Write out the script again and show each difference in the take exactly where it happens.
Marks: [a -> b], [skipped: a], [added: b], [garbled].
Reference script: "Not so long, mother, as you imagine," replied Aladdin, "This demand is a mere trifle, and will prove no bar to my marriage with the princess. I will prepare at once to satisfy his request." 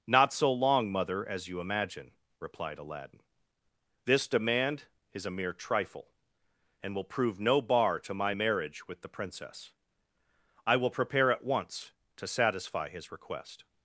"Not so long, mother, as you imagine," replied Aladdin, "This demand is a mere trifle, and will prove no bar to my marriage with the princess. I will prepare at once to satisfy his request."